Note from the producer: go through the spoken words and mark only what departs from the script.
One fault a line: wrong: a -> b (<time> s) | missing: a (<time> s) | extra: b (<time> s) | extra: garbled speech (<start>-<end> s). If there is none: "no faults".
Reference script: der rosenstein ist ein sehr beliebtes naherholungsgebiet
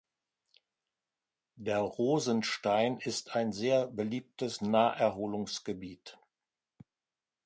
no faults